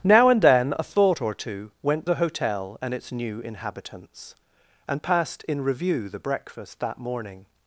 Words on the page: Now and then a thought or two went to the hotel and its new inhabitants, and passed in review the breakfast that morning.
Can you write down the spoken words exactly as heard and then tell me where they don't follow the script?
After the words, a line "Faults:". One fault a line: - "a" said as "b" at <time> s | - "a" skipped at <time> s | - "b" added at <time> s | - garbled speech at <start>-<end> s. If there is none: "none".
Now and then a thought or two went the hotel and its new inhabitants, and passed in review the breakfast that morning.
Faults:
- "to" skipped at 2.1 s